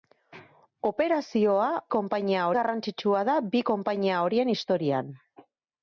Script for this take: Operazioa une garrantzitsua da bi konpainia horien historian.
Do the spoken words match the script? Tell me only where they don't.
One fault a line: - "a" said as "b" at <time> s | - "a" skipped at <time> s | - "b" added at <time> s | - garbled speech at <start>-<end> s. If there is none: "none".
- "une" said as "konpainia" at 2.0 s